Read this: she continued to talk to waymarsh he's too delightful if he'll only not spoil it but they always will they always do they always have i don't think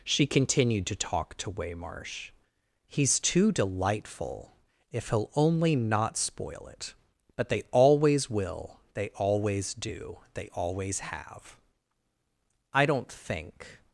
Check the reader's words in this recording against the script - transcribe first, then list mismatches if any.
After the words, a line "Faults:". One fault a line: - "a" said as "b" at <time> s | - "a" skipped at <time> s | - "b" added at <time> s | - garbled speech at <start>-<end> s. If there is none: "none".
she continued to talk to waymarsh he's too delightful if he'll only not spoil it but they always will they always do they always have i don't think
Faults:
none